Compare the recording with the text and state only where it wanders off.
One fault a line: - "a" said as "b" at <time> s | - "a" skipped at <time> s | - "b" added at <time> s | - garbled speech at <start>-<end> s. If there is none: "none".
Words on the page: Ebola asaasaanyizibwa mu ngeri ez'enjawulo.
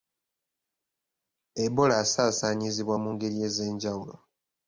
none